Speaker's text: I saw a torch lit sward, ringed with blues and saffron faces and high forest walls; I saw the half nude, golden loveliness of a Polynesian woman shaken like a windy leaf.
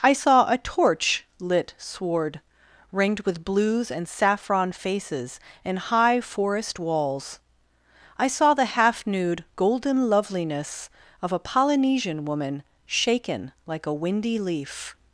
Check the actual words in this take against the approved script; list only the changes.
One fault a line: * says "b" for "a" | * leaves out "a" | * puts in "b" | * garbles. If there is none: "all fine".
all fine